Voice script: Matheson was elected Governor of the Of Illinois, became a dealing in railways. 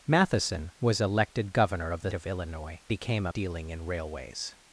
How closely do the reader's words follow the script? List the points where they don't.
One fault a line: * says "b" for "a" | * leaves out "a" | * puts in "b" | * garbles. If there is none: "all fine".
all fine